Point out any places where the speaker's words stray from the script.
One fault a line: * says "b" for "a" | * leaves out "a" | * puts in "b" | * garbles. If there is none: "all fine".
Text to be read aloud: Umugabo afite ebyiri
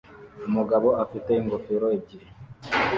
* puts in "ingofero"